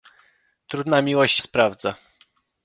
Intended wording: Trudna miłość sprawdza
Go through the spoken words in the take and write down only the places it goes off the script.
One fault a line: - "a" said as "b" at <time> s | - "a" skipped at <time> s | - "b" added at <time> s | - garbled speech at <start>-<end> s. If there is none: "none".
none